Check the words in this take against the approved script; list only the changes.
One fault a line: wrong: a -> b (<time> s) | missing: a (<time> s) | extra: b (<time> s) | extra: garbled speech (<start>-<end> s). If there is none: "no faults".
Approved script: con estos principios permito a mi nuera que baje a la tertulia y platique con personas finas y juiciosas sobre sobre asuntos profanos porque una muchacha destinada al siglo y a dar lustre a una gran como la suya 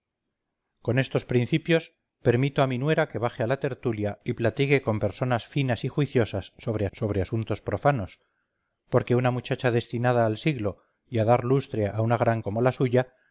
no faults